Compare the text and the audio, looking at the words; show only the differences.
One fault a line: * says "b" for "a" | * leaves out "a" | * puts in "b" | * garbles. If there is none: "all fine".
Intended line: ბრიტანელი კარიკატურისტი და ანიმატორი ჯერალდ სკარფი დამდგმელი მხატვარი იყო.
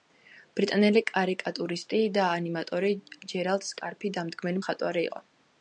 all fine